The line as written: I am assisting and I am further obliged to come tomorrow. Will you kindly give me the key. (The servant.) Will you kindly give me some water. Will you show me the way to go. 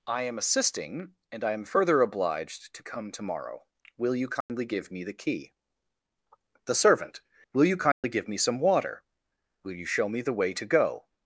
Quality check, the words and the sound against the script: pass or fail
fail